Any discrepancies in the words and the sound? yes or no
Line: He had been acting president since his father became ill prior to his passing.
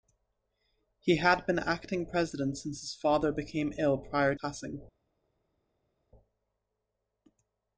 yes